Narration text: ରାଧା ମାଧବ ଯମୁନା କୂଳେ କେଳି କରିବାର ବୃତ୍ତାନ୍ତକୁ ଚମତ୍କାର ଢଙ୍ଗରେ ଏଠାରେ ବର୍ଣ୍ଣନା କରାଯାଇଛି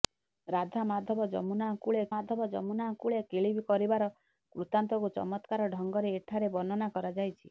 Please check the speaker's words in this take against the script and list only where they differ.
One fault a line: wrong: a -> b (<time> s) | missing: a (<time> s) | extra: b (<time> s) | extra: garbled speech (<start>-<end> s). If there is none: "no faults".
extra: ମାଧବ ଯମୁନା କୂଳେ (2.1 s)